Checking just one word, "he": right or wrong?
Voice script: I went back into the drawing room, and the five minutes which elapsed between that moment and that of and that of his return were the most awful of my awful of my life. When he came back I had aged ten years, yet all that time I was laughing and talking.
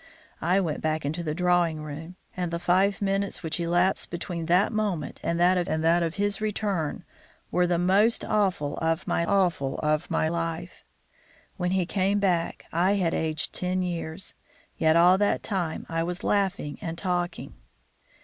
right